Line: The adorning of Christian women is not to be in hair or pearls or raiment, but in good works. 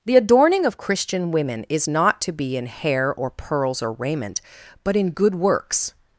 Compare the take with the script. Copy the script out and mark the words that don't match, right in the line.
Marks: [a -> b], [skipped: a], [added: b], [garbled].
The adorning of Christian women is not to be in hair or pearls or raiment, but in good works.